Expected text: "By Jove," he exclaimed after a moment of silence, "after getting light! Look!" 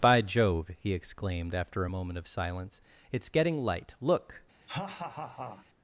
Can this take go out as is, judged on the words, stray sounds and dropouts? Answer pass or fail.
fail